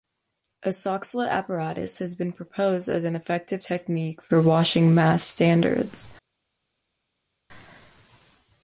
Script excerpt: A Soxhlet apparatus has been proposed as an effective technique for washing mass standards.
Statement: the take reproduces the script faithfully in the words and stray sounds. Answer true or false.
true